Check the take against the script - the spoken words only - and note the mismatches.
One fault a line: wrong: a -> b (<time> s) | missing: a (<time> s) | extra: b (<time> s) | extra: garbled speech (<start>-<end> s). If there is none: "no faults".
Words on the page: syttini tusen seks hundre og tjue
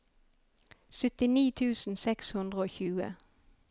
no faults